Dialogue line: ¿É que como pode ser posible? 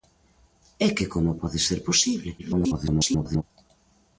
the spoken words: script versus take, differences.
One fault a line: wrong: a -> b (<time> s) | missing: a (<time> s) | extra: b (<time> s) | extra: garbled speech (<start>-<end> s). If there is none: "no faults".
extra: garbled speech (2.4-3.4 s)